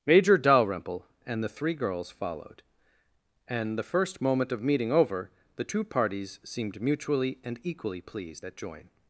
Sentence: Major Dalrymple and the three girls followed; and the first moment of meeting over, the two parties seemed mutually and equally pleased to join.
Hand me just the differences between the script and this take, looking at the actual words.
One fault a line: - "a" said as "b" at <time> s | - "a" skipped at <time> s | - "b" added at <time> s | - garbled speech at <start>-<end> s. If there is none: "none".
- "to" said as "at" at 8.4 s